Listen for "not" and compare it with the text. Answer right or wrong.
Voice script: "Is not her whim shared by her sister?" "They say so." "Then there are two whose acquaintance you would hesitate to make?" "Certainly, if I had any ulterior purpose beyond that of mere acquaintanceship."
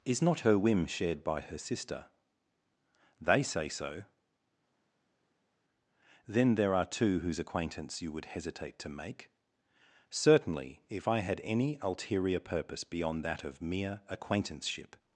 right